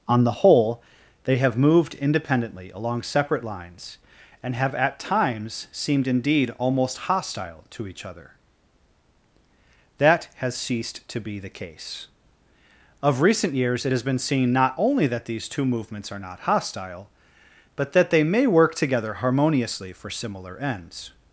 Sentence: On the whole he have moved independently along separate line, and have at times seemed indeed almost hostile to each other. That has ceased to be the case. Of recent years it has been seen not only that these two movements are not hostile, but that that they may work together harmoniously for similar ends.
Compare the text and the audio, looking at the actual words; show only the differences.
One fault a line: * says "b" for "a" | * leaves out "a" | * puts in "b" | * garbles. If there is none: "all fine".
* says "they" for "he"
* says "lines" for "line"
* leaves out "that"